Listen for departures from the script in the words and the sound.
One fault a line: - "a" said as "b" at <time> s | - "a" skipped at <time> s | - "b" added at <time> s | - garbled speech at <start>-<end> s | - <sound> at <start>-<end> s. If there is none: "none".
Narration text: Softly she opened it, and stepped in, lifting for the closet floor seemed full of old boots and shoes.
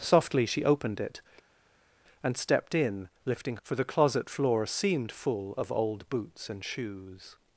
none